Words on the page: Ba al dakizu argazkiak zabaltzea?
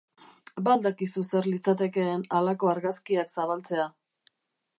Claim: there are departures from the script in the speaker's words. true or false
true